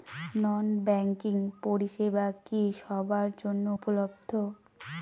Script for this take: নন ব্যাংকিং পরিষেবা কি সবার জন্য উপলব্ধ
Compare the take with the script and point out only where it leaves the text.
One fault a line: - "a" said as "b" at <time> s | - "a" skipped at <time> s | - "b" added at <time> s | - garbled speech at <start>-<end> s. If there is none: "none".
none